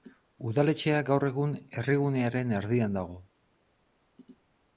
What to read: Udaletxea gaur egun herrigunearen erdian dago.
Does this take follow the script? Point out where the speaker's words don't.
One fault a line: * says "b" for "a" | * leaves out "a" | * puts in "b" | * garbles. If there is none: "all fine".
all fine